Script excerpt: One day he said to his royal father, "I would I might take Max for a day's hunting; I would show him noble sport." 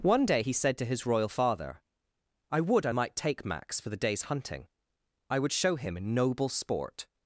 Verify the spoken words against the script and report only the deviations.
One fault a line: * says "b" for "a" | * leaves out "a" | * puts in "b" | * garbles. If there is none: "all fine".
* says "the" for "a"